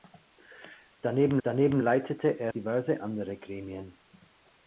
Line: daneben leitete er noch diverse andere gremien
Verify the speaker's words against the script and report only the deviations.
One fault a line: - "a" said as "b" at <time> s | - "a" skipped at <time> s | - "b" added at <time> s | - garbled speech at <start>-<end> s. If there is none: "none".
- "daneben" added at 1.4 s
- "noch" skipped at 2.5 s